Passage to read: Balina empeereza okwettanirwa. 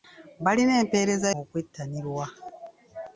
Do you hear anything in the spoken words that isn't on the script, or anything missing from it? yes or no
no